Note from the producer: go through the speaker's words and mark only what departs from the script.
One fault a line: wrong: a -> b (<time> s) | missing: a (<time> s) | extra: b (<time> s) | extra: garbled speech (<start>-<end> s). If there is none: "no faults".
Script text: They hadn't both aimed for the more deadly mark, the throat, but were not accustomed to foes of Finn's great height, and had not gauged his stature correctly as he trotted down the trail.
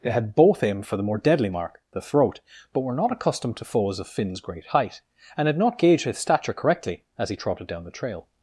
wrong: hadn't -> had (0.1 s)